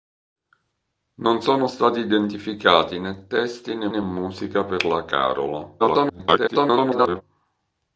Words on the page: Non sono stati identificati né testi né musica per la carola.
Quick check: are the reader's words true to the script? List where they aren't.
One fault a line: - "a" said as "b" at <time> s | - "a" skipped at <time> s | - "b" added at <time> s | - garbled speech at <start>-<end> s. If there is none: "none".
- "né" added at 3.9 s
- garbled speech at 5.8-7.2 s